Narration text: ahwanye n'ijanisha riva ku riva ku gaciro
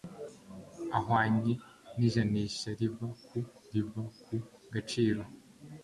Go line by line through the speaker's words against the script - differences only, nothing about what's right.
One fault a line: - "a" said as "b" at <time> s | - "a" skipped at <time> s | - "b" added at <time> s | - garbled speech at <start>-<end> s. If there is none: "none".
none